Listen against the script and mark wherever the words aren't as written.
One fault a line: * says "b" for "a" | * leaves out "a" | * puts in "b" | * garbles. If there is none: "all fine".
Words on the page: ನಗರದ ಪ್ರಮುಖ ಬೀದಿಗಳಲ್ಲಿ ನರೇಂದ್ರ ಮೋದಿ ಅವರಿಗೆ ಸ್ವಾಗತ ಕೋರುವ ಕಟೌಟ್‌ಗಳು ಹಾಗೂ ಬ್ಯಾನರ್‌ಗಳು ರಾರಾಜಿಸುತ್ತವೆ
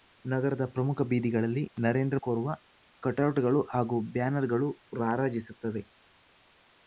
* leaves out "ಮೋದಿ ಅವರಿಗೆ ಸ್ವಾಗತ"